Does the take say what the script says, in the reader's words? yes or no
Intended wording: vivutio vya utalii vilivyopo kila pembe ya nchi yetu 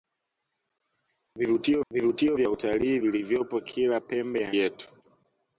no